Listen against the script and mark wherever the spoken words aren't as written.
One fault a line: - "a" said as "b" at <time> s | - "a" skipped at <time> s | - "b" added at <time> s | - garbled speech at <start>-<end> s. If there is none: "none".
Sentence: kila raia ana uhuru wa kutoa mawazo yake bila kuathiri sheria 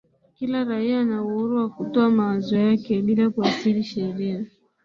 none